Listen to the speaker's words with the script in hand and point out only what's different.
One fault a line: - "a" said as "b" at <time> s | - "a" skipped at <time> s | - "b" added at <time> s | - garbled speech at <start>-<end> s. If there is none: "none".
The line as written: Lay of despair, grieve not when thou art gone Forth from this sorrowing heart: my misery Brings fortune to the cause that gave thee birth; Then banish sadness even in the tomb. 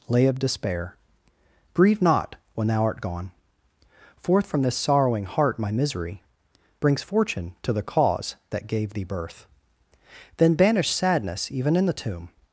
none